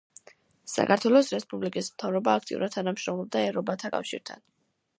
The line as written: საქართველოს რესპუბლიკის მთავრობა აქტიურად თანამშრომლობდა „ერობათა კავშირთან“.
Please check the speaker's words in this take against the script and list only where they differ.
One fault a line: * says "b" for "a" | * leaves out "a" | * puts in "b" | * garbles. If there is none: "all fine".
all fine